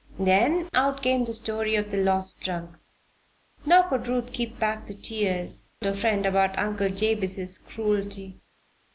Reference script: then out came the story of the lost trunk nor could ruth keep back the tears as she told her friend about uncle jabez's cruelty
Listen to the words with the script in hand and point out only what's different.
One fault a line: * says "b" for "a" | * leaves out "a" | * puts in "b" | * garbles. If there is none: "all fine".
* leaves out "as she told"